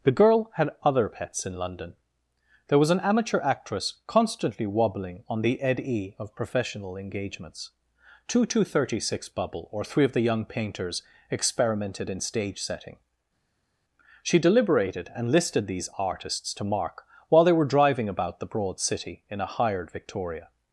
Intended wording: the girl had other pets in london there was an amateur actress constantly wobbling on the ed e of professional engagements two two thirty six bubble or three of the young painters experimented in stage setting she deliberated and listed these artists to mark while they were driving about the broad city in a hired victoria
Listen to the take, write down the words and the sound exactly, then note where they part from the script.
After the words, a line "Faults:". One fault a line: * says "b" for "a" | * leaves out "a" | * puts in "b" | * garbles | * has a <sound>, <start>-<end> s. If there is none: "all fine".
the girl had other pets in london there was an amateur actress constantly wobbling on the ed e of professional engagements two two thirty six bubble or three of the young painters experimented in stage setting she deliberated and listed these artists to mark while they were driving about the broad city in a hired victoria
Faults:
all fine